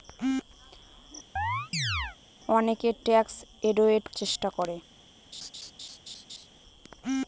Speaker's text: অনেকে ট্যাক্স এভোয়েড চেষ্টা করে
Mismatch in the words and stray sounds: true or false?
true